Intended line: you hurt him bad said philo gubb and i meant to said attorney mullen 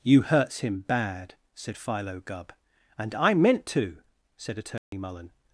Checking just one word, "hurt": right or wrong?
wrong